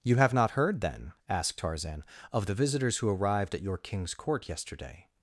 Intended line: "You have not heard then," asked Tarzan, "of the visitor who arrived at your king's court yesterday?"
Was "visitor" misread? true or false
true